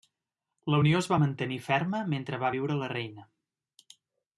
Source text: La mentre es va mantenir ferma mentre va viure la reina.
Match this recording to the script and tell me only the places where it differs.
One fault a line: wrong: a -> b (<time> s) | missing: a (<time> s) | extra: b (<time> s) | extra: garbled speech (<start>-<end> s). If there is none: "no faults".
wrong: mentre -> unió (0.8 s)